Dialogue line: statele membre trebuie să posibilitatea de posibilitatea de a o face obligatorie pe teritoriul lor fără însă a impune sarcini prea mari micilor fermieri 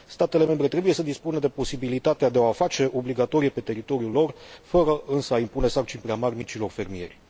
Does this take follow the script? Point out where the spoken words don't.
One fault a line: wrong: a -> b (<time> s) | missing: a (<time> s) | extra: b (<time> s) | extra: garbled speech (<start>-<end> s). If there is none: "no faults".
wrong: posibilitatea -> dispună (1.0 s)